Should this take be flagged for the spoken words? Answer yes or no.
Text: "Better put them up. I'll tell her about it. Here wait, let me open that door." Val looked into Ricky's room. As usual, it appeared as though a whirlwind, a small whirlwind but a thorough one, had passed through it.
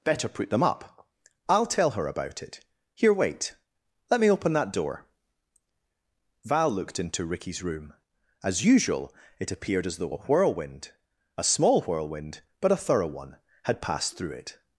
no